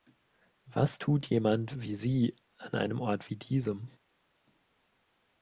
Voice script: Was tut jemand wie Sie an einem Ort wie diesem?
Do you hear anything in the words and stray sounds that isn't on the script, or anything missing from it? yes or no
no